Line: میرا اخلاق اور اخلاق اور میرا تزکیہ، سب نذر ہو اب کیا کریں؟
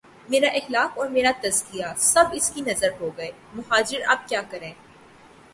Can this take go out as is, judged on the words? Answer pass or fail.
fail